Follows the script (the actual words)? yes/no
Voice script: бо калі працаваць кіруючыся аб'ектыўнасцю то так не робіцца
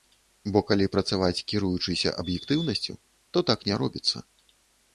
yes